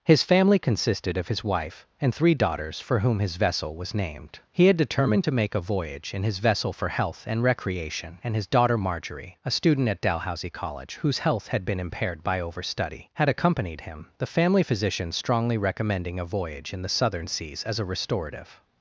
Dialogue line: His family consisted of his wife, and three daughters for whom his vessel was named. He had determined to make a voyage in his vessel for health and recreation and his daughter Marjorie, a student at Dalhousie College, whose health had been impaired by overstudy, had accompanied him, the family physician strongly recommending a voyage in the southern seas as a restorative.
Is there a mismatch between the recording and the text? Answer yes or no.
no